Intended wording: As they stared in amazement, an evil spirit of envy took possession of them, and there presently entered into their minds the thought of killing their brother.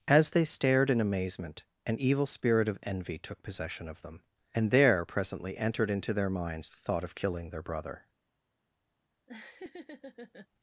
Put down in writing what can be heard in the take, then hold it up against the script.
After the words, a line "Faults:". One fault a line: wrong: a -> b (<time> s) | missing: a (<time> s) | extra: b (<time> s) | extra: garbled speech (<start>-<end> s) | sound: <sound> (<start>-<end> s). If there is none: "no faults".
As they stared in amazement, an evil spirit of envy took possession of them, and there presently entered into their minds the thought of killing their brother.
Faults:
sound: laugh (9.3-10.5 s)